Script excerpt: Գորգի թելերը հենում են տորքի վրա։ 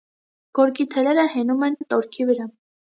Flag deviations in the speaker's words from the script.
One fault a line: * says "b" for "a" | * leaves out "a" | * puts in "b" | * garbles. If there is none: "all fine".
* puts in "են"